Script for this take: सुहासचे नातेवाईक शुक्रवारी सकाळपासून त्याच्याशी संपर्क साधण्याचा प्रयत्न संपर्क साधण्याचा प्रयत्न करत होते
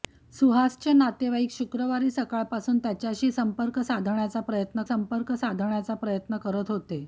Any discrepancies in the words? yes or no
no